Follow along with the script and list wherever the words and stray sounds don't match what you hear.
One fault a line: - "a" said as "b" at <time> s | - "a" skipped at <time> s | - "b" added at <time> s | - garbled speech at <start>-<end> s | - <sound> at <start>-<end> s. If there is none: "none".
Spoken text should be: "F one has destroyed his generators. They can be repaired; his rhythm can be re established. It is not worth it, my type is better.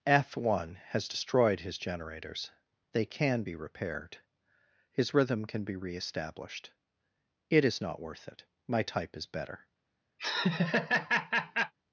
- laugh at 10.2-11.7 s